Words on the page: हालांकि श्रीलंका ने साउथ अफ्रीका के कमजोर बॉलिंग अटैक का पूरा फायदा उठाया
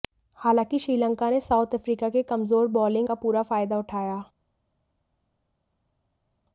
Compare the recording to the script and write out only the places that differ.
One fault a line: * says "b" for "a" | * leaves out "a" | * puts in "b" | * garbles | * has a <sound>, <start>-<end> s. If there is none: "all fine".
* leaves out "अटैक"